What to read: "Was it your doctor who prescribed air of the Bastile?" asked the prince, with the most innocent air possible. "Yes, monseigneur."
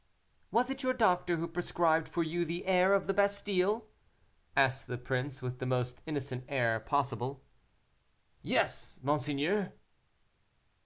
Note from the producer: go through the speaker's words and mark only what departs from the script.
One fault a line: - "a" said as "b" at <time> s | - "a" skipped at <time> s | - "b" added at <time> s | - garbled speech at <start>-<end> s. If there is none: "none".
- "for you the" added at 2.1 s